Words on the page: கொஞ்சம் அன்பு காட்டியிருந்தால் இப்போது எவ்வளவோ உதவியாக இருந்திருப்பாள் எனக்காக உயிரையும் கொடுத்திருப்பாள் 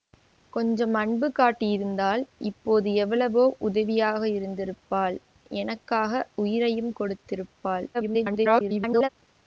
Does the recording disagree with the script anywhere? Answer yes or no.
yes